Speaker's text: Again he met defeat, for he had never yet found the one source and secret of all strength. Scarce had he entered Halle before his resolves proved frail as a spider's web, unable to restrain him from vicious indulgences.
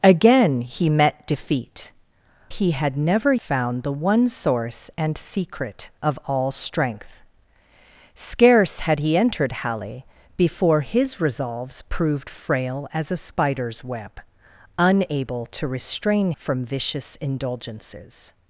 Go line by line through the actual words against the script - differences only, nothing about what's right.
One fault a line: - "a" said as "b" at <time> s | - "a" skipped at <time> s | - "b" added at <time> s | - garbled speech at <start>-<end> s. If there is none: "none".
- "for" skipped at 1.9 s
- "yet" skipped at 3.3 s
- "him" skipped at 16.3 s